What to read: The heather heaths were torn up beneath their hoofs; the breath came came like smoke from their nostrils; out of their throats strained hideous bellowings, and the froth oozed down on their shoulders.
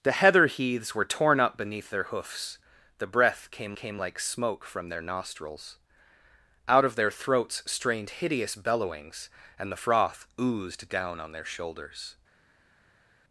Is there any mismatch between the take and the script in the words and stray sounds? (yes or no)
no